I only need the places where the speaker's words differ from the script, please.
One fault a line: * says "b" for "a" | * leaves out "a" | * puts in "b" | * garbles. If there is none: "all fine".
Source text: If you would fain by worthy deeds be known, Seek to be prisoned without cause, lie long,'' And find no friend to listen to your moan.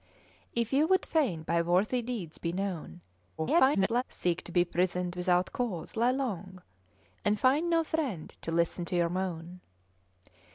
* garbles